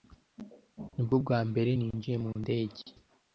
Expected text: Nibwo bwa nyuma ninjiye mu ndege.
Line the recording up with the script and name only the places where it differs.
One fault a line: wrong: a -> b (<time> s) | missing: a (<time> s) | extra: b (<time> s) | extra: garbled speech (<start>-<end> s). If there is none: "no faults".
wrong: nyuma -> mbere (1.5 s)